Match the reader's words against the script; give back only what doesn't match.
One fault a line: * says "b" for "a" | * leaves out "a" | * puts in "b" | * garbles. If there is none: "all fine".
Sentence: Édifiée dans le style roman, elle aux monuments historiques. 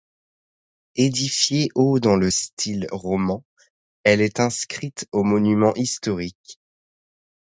* puts in "au"
* puts in "est inscrite"